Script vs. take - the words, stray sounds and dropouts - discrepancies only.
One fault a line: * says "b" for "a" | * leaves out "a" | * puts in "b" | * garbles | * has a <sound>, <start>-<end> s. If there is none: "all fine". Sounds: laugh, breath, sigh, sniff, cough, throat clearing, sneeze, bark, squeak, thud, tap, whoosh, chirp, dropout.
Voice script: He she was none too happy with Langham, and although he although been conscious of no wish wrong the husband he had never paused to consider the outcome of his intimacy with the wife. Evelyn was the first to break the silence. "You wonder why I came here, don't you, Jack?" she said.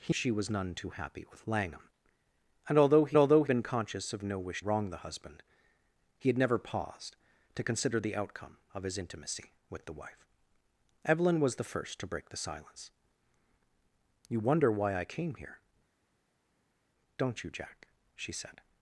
all fine